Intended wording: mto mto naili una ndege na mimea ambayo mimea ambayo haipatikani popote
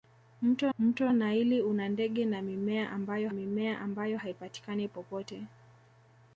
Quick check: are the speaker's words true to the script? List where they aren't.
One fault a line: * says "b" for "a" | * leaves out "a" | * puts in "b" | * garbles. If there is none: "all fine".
all fine